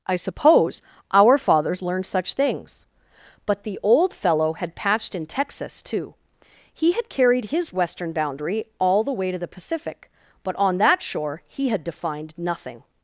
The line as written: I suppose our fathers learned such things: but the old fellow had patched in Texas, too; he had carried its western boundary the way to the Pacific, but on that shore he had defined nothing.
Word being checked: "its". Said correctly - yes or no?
no